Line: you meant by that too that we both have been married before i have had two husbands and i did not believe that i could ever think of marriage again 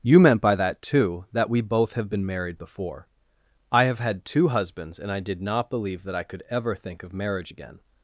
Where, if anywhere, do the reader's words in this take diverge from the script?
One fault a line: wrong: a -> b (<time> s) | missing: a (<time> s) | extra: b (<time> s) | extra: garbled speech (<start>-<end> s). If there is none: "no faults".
no faults